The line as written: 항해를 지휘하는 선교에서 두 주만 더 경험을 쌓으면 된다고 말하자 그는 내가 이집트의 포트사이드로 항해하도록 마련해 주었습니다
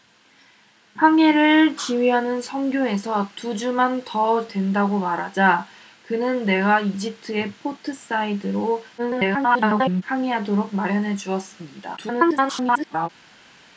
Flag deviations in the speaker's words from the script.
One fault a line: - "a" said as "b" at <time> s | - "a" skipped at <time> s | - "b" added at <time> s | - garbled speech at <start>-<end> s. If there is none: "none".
- "경험을 쌓으면" skipped at 4.5 s
- garbled speech at 9.0-10.0 s
- garbled speech at 12.0-13.1 s